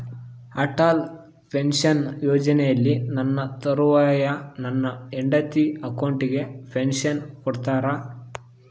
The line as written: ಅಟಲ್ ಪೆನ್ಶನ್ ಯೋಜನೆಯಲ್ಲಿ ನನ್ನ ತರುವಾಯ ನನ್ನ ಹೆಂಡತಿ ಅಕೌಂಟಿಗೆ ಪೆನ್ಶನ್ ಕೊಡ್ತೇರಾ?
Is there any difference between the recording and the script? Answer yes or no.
no